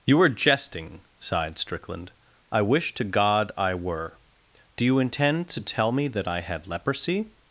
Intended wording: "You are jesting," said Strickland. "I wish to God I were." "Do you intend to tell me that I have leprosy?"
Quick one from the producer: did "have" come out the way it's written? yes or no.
no